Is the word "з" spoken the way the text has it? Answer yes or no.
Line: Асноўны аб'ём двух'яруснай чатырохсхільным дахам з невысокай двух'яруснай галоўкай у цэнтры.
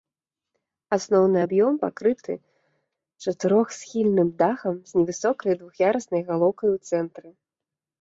yes